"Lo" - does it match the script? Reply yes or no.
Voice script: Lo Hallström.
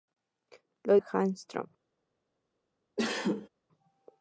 yes